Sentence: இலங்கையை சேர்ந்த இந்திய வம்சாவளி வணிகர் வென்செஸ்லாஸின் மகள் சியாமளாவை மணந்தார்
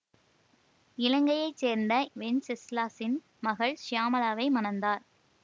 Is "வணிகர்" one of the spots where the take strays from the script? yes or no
yes